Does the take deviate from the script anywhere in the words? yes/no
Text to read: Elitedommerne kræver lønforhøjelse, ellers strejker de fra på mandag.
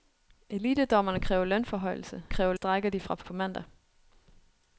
yes